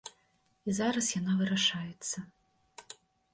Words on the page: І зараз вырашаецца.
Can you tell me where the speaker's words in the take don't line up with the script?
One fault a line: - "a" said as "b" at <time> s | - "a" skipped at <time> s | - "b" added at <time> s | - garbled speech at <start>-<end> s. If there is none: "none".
- "яна" added at 1.2 s